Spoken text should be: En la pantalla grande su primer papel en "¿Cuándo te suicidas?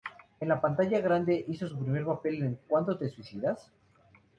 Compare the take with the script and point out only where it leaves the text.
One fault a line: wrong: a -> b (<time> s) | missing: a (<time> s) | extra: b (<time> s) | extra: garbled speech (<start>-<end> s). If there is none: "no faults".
extra: hizo (1.5 s)